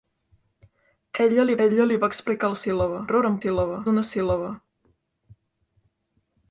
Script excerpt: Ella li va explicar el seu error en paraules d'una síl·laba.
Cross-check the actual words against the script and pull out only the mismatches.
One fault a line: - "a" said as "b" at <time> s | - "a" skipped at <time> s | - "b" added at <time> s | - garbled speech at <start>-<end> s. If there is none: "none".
- "ella li" added at 1.6 s
- "seu" said as "síl·laba" at 2.6 s
- "paraules" said as "síl·laba" at 3.4 s